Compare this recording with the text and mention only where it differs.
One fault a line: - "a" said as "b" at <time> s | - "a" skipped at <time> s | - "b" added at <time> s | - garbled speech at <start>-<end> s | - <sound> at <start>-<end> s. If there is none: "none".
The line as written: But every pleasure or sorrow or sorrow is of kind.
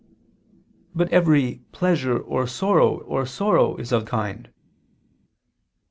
none